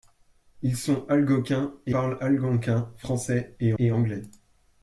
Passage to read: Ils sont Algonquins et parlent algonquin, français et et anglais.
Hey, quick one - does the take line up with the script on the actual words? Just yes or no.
yes